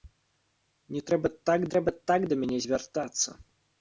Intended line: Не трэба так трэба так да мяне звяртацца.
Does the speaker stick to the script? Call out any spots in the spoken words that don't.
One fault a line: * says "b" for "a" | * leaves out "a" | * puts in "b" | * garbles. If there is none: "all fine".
all fine